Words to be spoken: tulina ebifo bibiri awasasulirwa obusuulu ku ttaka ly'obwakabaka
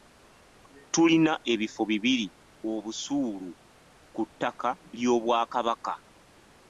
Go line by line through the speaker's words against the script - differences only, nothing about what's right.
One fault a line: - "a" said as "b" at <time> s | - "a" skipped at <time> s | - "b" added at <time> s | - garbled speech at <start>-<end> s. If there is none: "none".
- "awasasulirwa" skipped at 2.3 s